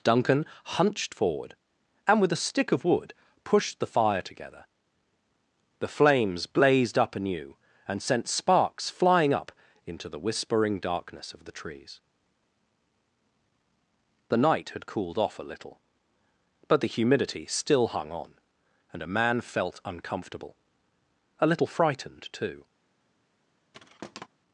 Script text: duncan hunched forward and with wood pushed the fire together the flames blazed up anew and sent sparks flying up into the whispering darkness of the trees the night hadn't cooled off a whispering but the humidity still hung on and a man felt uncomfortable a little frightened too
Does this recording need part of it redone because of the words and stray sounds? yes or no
yes